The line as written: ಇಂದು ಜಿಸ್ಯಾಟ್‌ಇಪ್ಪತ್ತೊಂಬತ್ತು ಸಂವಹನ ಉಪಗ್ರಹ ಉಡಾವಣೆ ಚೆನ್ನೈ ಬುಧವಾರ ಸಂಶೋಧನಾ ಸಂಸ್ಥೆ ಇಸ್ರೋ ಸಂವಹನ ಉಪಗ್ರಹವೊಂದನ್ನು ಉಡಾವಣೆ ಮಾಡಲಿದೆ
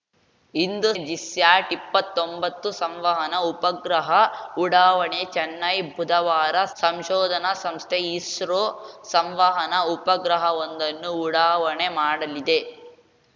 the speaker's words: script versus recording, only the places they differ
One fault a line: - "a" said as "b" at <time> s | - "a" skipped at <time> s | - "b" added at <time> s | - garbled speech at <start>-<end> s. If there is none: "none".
none